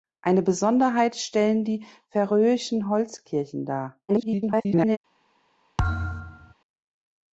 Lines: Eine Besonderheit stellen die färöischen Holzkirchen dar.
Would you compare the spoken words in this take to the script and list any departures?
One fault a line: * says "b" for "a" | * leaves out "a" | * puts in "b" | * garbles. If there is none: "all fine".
* garbles